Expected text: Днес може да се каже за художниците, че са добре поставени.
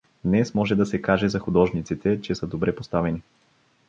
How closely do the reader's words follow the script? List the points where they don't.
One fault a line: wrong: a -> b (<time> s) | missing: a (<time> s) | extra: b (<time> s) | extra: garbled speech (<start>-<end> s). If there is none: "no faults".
no faults